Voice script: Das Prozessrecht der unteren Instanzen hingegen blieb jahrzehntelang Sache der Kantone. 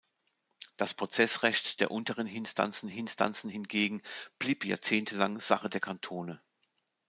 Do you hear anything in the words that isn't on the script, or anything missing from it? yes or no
yes